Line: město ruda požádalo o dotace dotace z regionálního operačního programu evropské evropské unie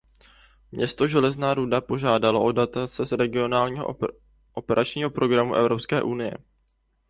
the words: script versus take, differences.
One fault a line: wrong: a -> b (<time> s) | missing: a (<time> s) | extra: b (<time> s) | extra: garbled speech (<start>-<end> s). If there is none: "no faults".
extra: železná (1.1 s)
missing: dotace (3.0 s)
missing: evropské (6.0 s)